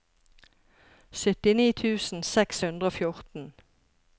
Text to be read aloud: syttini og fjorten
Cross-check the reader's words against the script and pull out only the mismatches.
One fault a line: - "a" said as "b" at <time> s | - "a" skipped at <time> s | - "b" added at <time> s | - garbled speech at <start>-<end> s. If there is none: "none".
- "tusen seks hundre" added at 1.8 s